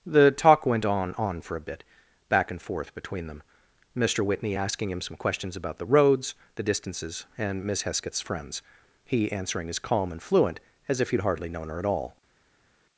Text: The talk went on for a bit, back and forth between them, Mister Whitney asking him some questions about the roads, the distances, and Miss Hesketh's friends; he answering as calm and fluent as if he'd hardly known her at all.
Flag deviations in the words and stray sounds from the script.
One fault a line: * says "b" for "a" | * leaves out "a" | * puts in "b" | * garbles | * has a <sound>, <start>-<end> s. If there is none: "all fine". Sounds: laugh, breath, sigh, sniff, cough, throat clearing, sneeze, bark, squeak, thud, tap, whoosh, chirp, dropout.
* puts in "on"